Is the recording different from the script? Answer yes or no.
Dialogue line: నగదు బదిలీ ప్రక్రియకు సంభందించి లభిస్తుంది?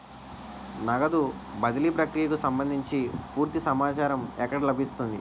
yes